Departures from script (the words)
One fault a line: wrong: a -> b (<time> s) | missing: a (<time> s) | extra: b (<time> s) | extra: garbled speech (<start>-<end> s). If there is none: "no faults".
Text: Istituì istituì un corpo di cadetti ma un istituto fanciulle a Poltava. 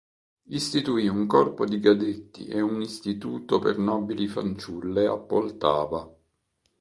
missing: istituì (1.1 s)
wrong: ma -> e (2.5 s)
extra: per nobili (3.6 s)